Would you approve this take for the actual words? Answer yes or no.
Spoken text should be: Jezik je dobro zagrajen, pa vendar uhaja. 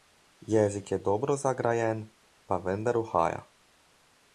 yes